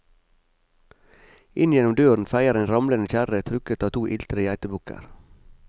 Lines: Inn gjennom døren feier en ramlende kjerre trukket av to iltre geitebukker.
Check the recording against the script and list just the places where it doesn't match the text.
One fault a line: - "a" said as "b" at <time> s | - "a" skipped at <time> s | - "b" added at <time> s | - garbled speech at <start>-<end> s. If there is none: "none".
none